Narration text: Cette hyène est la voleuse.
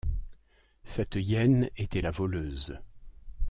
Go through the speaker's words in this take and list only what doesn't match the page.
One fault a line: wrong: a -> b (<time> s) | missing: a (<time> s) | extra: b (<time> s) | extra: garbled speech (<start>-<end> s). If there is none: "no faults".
wrong: est -> était (1.8 s)